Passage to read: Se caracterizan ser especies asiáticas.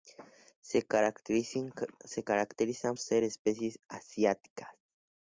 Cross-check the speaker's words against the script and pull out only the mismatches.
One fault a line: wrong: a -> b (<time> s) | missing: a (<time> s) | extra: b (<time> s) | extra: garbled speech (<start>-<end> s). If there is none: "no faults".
no faults